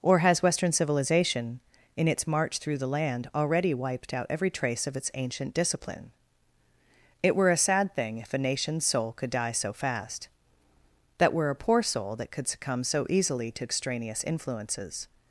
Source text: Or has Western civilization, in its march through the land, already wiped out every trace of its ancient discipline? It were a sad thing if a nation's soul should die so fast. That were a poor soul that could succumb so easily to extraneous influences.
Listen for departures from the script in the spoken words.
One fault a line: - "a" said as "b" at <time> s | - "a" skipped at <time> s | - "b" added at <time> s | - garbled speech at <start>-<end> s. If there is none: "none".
- "should" said as "could" at 9.1 s